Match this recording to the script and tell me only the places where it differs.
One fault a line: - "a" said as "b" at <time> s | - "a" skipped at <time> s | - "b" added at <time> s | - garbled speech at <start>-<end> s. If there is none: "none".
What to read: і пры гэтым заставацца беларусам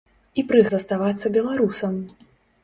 - "гэтым" skipped at 0.6 s